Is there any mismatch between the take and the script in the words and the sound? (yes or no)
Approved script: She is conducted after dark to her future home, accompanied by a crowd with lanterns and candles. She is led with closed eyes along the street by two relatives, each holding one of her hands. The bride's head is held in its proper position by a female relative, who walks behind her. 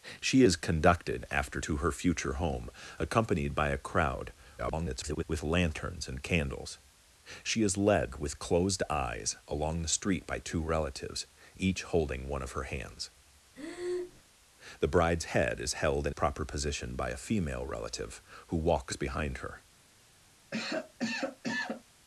yes